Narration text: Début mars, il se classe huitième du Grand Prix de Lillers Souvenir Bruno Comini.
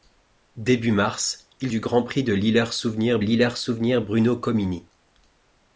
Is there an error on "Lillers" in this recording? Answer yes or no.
no